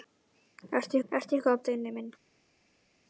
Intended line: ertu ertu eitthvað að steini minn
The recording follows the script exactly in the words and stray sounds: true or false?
true